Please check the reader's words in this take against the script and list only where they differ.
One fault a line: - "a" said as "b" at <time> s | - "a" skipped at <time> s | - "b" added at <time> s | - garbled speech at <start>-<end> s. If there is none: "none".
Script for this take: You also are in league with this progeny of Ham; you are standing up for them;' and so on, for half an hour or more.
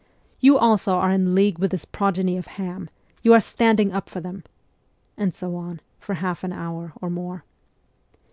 none